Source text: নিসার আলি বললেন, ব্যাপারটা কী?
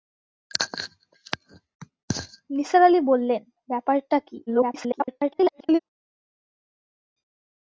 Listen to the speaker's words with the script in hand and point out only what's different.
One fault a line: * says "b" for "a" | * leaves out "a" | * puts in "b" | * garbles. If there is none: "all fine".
* garbles